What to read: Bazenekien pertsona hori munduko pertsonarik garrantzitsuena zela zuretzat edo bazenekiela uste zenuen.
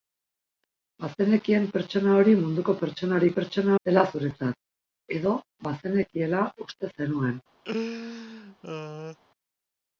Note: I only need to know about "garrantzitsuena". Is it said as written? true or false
false